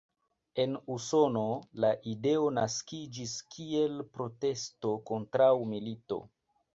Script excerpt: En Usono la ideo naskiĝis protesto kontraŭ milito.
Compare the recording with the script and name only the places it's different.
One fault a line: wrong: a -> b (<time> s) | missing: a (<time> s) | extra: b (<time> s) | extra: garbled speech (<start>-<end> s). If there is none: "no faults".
extra: kiel (3.6 s)